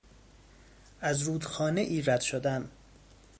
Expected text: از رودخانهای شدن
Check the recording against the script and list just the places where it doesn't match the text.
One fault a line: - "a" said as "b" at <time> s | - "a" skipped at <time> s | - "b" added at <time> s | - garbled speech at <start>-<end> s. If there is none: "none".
- "رد" added at 2.0 s